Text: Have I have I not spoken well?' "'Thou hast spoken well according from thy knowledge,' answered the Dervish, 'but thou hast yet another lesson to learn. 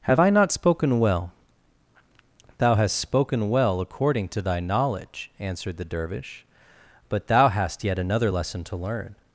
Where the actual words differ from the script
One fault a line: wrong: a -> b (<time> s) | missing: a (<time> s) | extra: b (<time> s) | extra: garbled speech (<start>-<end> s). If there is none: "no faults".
missing: have I (0.3 s)
wrong: from -> to (4.3 s)